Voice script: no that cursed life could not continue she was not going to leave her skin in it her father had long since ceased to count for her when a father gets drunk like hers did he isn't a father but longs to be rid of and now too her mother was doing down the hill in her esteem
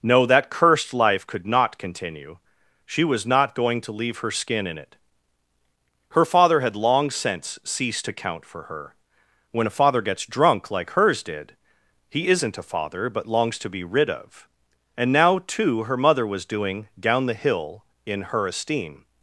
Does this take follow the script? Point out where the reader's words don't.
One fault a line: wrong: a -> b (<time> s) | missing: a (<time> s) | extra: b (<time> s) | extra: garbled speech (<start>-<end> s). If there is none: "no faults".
no faults